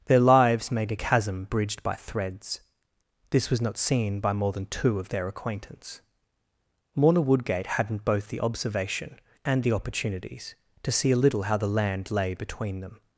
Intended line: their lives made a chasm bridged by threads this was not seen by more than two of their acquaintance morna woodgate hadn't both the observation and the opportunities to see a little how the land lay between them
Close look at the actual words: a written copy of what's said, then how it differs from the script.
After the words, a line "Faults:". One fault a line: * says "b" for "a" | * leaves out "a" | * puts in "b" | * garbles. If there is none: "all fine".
their lives made a chasm bridged by threads this was not seen by more than two of their acquaintance morna woodgate hadn't both the observation and the opportunities to see a little how the land lay between them
Faults:
all fine